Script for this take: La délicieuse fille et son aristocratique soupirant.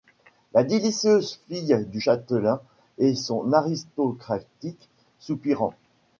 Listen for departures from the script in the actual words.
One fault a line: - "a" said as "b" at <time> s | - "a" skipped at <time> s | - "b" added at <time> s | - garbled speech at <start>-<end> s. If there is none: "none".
- "du châtelain" added at 1.9 s